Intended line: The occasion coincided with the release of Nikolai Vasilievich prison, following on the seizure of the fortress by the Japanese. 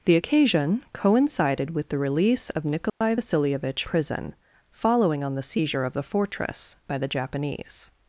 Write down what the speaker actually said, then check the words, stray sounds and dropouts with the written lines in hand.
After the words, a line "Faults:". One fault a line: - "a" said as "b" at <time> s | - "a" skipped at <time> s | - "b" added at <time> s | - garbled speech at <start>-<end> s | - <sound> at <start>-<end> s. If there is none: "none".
The occasion coincided with the release of Nikolai Vasilievich prison, following on the seizure of the fortress by the Japanese.
Faults:
- dropout at 2.9-3.0 s